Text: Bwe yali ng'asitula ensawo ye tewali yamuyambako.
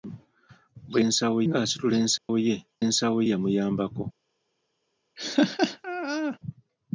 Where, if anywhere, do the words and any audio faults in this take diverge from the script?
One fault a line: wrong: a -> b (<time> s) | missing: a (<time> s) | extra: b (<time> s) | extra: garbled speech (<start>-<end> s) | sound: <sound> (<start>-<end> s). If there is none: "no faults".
wrong: yali -> ensawo (1.1 s)
sound: dropout (2.2-2.3 s)
wrong: tewali -> ensawo (2.9 s)
sound: laugh (5.2-6.4 s)